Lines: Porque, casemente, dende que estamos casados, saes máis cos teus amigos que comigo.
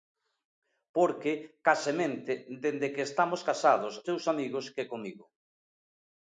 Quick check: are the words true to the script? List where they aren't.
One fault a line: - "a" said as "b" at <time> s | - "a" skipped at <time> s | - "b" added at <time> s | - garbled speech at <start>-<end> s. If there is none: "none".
- "saes máis cos" skipped at 3.9 s